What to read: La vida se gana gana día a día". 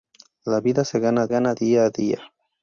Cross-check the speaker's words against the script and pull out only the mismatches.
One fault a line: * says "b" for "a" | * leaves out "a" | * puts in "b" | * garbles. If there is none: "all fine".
all fine